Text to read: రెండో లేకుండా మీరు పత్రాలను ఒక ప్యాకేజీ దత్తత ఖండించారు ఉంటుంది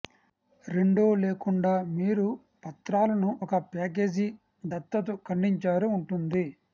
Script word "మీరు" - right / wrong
right